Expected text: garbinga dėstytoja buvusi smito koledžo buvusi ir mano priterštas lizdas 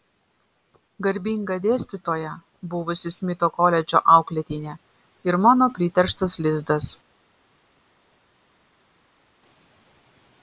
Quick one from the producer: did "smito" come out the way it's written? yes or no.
yes